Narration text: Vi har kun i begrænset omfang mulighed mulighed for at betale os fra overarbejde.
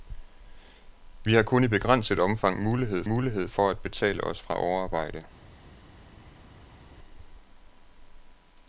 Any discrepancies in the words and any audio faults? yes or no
no